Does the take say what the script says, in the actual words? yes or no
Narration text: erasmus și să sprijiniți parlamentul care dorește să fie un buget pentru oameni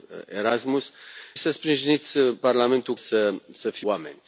no